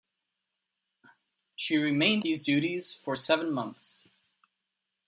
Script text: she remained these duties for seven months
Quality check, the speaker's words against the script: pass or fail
pass